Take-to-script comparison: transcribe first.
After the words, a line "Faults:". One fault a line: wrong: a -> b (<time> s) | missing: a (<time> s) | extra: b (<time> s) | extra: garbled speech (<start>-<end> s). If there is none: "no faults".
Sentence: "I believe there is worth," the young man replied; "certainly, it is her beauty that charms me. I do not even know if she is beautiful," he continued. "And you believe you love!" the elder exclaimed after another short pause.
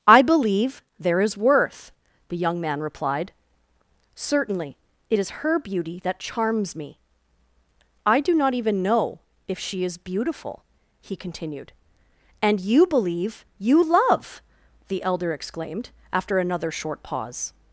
"I believe there is worth," the young man replied; "certainly, it is her beauty that charms me. I do not even know if she is beautiful," he continued. "And you believe you love!" the elder exclaimed after another short pause.
Faults:
no faults